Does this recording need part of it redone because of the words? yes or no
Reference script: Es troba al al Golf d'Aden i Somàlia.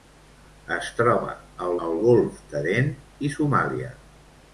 no